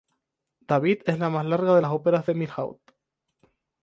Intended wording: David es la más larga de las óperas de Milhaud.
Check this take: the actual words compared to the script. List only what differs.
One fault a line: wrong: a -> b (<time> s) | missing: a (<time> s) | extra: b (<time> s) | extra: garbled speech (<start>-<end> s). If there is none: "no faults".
no faults